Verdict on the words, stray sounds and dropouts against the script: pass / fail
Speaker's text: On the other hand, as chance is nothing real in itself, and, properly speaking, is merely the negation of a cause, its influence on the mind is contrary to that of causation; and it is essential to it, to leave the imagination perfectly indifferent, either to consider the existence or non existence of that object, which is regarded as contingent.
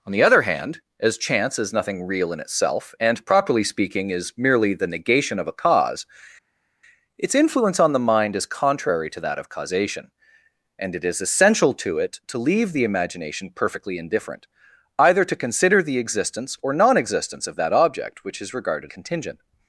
fail